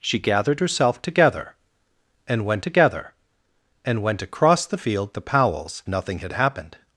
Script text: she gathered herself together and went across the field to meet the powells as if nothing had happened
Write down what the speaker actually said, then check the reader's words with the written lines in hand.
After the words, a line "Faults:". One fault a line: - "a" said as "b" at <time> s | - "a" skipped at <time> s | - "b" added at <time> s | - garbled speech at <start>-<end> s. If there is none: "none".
she gathered herself together and went together and went across the field the powells nothing had happened
Faults:
- "together and went" added at 2.6 s
- "to meet" skipped at 5.1 s
- "as if" skipped at 5.8 s